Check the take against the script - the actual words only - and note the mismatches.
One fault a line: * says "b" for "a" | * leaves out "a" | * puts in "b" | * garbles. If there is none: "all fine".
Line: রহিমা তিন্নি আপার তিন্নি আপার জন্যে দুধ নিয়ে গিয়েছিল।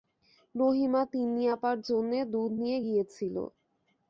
* leaves out "তিন্নি আপার"